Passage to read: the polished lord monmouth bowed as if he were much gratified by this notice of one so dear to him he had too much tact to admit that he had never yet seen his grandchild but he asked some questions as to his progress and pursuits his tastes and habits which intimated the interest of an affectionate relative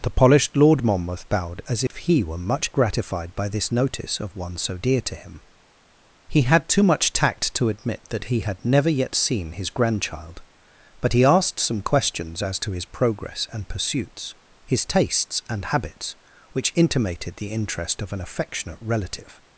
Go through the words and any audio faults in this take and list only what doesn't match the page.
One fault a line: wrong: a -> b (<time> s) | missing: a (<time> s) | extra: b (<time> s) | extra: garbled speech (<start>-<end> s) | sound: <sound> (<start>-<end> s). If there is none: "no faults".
sound: dropout (1.9-1.9 s)